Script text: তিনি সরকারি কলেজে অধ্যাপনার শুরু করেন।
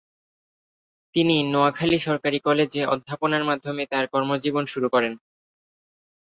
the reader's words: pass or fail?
fail